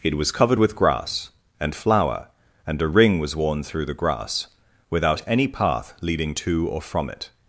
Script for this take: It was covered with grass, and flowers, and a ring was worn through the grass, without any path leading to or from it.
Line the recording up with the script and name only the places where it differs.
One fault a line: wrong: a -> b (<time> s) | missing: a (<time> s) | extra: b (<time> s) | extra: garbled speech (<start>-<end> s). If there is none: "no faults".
wrong: flowers -> flower (1.8 s)